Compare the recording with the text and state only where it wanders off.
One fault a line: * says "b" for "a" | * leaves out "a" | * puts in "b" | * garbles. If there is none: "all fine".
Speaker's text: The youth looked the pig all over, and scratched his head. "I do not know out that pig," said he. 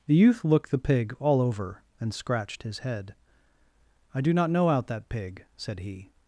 all fine